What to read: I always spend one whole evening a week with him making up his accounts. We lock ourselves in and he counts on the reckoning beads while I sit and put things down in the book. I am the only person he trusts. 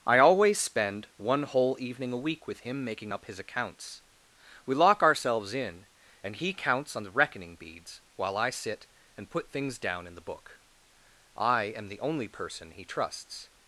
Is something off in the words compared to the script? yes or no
no